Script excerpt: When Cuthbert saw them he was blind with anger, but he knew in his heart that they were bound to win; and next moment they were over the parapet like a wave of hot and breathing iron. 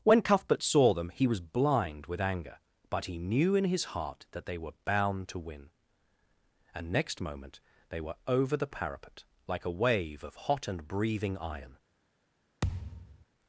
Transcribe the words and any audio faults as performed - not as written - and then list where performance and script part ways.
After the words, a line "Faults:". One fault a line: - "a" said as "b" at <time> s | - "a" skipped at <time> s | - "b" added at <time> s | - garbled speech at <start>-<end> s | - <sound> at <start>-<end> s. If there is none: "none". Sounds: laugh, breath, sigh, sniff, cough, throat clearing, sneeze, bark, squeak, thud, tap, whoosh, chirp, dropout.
When Cuthbert saw them he was blind with anger, but he knew in his heart that they were bound to win; and next moment they were over the parapet like a wave of hot and breathing iron.
Faults:
- thud at 12.6-13.2 s